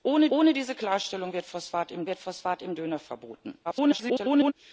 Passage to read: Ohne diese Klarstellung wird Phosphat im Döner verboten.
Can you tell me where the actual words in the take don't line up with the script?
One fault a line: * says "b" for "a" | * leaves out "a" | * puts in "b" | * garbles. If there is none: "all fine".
* puts in "ohne"
* puts in "wird Phosphat im"
* garbles